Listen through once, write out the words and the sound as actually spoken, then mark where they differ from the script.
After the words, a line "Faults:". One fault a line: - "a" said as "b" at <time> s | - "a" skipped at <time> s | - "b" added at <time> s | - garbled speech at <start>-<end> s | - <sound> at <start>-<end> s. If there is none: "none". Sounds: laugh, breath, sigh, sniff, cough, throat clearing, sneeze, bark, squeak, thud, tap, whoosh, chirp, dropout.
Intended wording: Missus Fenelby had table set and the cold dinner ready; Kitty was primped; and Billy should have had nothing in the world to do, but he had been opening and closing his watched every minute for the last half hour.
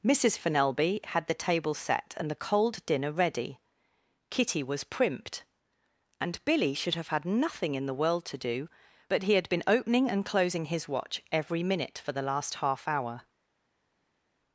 Missus Fenelby had the table set and the cold dinner ready; Kitty was primped; and Billy should have had nothing in the world to do, but he had been opening and closing his watch every minute for the last half hour.
Faults:
- "the" added at 1.3 s
- "watched" said as "watch" at 10.9 s